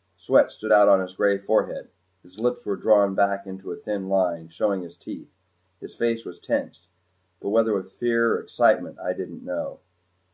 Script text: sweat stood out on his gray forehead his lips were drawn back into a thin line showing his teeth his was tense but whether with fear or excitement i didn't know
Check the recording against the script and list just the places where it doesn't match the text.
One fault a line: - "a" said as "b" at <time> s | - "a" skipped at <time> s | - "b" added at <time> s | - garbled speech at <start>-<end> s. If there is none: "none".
- "face" added at 5.9 s